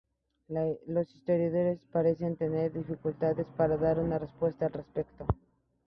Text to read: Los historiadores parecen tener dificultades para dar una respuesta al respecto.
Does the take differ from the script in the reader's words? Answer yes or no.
no